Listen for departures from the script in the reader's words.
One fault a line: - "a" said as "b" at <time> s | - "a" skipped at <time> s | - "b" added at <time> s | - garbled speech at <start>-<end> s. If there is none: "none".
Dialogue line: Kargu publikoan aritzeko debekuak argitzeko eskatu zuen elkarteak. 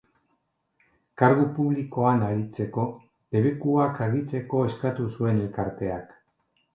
none